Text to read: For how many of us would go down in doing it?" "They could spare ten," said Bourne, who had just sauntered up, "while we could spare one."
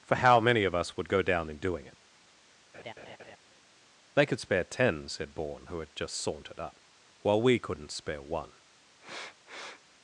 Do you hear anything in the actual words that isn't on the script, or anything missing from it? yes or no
yes